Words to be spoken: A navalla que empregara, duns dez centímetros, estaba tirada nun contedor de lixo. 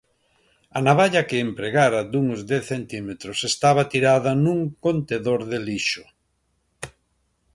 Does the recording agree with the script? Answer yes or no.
yes